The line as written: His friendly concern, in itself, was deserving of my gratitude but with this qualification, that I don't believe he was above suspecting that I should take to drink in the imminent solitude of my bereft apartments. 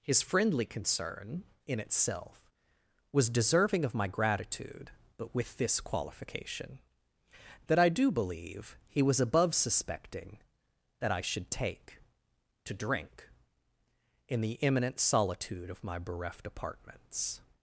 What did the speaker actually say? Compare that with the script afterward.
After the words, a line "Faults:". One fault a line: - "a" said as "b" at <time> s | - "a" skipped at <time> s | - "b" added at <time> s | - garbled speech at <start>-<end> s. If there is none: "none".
His friendly concern, in itself, was deserving of my gratitude but with this qualification, that I do believe he was above suspecting that I should take to drink in the imminent solitude of my bereft apartments.
Faults:
- "don't" said as "do" at 7.9 s